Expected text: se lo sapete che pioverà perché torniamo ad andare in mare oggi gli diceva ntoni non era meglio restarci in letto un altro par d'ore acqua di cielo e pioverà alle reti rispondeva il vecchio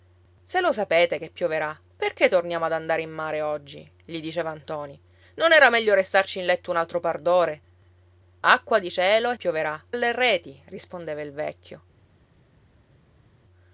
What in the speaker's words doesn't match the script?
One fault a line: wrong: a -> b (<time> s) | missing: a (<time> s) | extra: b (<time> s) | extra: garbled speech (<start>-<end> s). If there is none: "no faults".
no faults